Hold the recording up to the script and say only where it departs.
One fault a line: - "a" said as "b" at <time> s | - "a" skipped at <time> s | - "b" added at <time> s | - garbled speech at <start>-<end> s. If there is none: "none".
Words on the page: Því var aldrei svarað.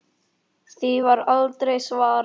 none